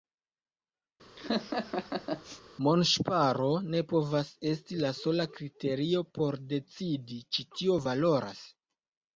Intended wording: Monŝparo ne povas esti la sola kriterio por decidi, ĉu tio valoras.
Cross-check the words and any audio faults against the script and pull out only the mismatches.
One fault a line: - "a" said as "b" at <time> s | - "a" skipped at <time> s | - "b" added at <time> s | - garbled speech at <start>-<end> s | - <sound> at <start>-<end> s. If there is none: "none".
- laugh at 1.2-2.4 s